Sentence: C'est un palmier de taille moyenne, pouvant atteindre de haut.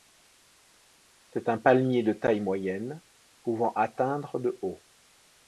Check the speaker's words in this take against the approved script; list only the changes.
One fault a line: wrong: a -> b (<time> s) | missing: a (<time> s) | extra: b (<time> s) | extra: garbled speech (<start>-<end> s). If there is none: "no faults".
no faults